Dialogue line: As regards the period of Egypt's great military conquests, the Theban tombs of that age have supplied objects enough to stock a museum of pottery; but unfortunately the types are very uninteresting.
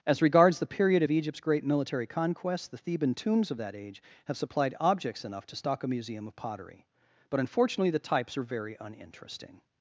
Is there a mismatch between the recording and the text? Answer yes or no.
no